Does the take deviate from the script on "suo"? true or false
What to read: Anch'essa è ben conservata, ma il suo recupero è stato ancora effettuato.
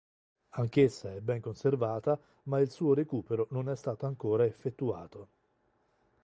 false